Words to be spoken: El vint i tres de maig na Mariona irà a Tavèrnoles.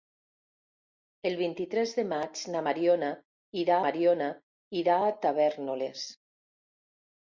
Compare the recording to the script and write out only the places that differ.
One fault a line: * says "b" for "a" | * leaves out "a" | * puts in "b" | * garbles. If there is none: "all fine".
* puts in "Mariona irà"